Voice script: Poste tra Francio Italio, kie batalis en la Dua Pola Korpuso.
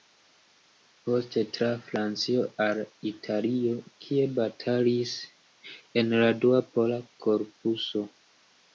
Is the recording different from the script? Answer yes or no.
yes